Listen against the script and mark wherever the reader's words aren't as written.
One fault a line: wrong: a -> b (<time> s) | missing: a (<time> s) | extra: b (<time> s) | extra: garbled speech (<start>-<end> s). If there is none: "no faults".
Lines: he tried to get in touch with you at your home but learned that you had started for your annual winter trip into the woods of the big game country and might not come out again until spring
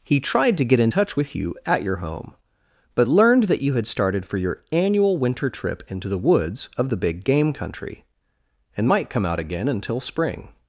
missing: not (9.1 s)